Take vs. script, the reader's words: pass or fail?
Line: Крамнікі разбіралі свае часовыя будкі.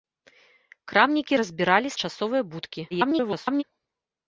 fail